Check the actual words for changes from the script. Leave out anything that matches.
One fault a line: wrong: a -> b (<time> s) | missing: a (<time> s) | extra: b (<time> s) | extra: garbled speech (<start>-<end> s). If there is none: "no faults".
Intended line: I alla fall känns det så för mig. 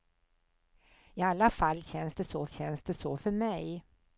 extra: känns det så (2.5 s)